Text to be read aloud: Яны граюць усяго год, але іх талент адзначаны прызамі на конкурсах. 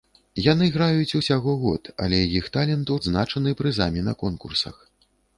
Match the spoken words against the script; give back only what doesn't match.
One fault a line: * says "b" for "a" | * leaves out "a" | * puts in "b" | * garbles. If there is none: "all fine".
all fine